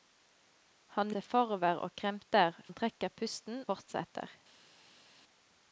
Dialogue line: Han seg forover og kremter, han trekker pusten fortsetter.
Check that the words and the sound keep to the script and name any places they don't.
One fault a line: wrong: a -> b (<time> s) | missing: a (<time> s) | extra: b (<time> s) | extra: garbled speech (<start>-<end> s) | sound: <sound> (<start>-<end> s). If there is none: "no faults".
no faults